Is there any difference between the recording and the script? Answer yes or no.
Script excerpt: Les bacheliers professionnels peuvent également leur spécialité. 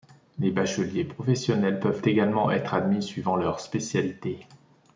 yes